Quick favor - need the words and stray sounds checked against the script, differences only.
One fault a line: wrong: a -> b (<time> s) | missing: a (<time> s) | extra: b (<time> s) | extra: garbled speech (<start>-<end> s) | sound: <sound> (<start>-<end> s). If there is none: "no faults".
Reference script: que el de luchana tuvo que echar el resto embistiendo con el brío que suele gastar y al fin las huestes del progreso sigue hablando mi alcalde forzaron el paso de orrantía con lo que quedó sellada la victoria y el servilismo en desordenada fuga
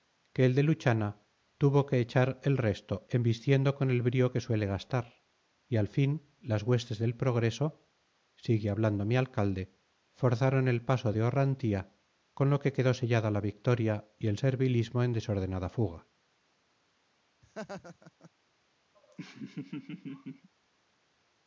sound: laugh (17.4-18.3 s)
sound: laugh (18.9-20.5 s)